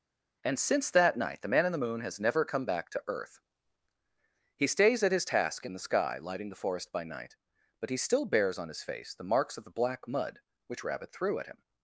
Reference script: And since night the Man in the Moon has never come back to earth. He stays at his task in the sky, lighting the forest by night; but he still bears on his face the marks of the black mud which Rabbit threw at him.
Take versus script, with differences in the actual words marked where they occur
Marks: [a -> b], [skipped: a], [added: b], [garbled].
And since [added: that] night the Man in the Moon has never come back to earth. He stays at his task in the sky, lighting the forest by night; but he still bears on his face the marks of the black mud which Rabbit threw at him.